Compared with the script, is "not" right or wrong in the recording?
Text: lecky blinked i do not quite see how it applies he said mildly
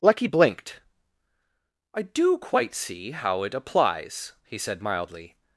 wrong